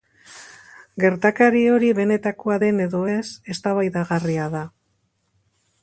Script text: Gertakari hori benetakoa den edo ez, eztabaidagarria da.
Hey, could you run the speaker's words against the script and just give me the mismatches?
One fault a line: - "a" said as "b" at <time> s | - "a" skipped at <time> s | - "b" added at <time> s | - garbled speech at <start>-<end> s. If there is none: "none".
none